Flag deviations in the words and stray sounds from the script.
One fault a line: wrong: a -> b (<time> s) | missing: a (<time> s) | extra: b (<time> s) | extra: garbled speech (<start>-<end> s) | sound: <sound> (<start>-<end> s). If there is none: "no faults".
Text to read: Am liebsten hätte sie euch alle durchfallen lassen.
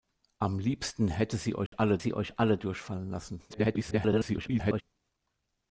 sound: dropout (1.7-1.7 s)
extra: sie euch alle (2.0 s)
extra: garbled speech (3.5-4.8 s)